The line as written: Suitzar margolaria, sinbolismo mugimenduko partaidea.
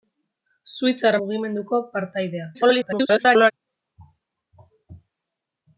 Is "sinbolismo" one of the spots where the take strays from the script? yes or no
yes